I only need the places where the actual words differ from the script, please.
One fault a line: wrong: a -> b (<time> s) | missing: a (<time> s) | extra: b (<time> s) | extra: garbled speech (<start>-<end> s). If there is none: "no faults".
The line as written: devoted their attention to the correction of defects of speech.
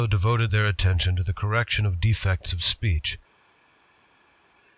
no faults